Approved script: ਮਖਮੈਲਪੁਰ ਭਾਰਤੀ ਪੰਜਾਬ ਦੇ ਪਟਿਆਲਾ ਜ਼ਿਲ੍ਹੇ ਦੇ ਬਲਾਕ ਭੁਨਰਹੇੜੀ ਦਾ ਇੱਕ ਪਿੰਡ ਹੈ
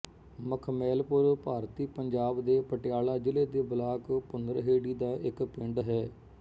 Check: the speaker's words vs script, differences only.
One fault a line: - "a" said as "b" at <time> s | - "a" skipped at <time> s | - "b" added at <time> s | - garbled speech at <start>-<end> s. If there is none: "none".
none